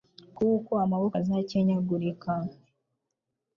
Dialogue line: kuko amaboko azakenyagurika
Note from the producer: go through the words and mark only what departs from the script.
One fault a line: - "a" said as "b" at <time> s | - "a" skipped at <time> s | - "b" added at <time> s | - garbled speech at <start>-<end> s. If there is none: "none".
none